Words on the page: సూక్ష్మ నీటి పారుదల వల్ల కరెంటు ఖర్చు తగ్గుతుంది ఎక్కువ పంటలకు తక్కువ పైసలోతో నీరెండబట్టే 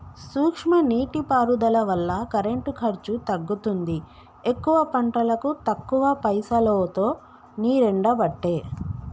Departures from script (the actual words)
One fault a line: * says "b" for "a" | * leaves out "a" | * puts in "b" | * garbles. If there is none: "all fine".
all fine